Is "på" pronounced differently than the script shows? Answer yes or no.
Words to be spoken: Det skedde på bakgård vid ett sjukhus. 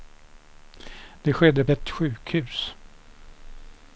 yes